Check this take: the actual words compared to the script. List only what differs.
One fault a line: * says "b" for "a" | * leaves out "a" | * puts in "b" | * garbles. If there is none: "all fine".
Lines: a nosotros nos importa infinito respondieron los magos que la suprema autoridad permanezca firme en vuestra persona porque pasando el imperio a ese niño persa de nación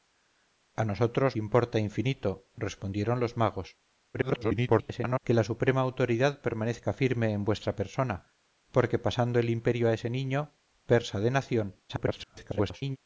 * leaves out "nos"
* garbles
* garbles